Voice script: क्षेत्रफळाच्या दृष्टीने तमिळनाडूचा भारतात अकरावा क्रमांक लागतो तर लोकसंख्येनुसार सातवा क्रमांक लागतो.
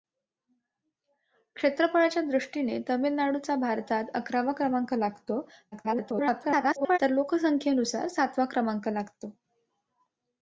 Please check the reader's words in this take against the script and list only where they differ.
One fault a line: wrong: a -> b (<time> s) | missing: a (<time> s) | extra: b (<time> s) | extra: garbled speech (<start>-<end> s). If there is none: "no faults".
extra: garbled speech (5.7-7.0 s)